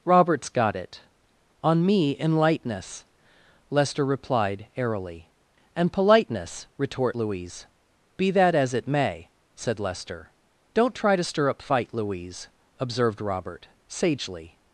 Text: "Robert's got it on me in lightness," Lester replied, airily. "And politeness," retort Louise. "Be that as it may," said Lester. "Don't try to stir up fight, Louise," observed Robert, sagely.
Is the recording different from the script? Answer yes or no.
no